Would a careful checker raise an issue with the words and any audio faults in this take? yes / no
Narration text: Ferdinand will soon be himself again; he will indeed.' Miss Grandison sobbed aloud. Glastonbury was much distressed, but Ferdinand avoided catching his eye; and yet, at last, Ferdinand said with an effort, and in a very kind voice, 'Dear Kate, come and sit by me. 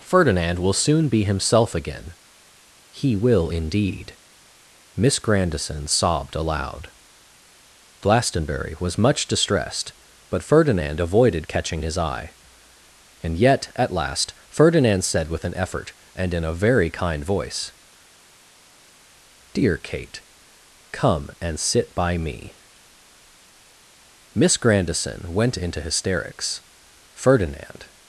yes